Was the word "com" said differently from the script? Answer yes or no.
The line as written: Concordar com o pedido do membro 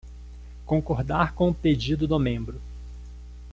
no